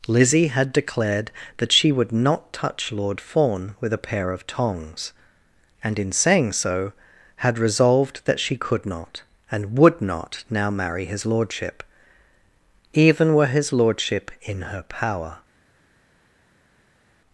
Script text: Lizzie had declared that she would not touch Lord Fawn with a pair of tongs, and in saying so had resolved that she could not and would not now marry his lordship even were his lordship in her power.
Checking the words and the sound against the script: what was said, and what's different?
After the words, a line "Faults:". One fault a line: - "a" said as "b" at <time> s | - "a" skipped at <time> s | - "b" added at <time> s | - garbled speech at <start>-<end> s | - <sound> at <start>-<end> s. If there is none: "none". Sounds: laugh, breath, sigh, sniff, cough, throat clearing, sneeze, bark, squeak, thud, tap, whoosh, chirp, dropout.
Lizzie had declared that she would not touch Lord Fawn with a pair of tongs, and in saying so had resolved that she could not and would not now marry his lordship even were his lordship in her power.
Faults:
none